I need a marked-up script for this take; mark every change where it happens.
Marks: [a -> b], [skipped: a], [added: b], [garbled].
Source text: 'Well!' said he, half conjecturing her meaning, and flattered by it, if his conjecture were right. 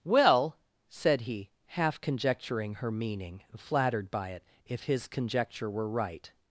'Well!' said he, half conjecturing her meaning, [skipped: and] flattered by it, if his conjecture were right.